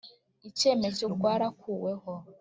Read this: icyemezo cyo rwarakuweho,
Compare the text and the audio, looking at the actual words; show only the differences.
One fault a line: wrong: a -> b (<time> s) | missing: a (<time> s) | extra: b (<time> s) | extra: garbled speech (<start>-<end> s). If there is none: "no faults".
no faults